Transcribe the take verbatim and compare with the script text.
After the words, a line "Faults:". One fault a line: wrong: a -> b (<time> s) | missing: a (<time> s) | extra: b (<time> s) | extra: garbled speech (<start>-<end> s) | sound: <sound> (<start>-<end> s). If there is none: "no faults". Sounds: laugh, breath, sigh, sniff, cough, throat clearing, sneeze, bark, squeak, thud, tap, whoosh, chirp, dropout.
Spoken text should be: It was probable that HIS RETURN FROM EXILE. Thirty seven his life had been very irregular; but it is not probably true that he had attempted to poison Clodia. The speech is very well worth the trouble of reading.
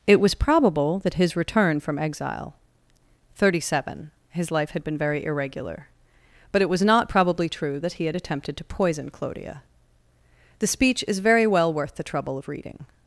It was probable that HIS RETURN FROM EXILE. Thirty seven his life had been very irregular; but it was not probably true that he had attempted to poison Clodia. The speech is very well worth the trouble of reading.
Faults:
wrong: is -> was (6.7 s)